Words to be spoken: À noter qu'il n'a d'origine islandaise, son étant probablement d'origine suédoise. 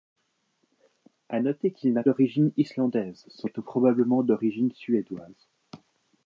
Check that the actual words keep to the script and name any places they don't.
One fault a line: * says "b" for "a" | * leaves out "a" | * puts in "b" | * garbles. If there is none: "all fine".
all fine